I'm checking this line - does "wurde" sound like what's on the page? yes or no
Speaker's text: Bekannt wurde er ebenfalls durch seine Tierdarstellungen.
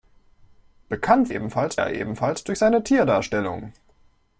no